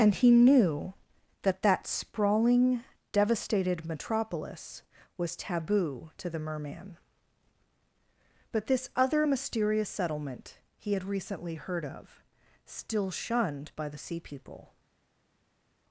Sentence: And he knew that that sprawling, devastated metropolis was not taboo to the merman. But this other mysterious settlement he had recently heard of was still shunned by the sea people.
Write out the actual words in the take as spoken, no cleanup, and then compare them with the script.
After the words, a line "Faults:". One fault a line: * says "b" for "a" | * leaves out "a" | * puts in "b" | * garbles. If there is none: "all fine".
And he knew that that sprawling, devastated metropolis was taboo to the merman. But this other mysterious settlement he had recently heard of still shunned by the sea people.
Faults:
* leaves out "not"
* leaves out "was"